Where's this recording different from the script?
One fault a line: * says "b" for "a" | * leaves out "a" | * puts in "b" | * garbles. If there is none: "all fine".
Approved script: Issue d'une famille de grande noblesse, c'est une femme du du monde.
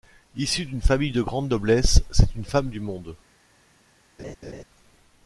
* leaves out "du"